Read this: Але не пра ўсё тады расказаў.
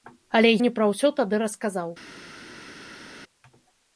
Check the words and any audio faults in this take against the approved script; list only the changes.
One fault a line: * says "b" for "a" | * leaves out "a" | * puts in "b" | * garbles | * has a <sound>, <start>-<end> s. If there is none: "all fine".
all fine